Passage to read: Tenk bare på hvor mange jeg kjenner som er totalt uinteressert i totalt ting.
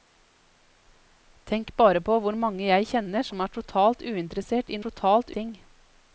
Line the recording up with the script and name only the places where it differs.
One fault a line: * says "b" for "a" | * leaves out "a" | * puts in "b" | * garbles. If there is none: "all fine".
all fine